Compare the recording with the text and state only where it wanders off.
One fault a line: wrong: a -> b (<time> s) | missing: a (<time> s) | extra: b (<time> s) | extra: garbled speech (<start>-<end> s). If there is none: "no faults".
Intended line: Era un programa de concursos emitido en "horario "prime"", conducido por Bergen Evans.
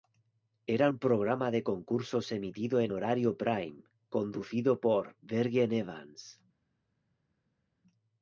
no faults